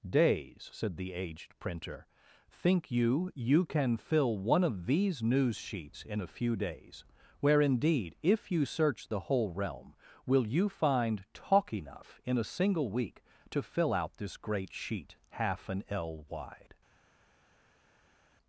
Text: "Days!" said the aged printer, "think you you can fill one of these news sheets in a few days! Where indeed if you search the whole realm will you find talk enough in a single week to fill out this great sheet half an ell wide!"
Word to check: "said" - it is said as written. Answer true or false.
true